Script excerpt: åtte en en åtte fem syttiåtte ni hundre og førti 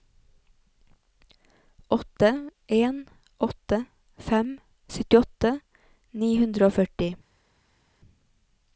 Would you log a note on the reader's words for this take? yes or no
yes